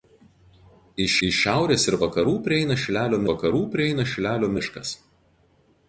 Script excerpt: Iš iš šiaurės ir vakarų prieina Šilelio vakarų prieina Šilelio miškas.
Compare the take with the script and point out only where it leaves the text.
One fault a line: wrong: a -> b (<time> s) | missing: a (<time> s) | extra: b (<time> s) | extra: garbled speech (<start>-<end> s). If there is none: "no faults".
no faults